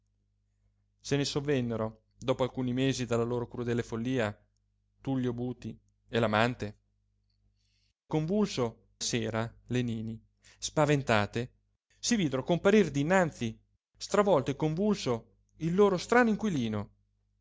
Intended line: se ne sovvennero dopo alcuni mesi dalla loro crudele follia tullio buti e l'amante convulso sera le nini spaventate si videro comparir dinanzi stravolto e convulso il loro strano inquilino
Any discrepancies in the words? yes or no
no